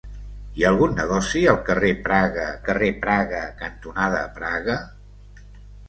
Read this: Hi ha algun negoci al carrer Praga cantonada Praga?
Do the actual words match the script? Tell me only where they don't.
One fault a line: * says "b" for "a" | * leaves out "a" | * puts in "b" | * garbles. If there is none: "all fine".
* puts in "carrer Praga"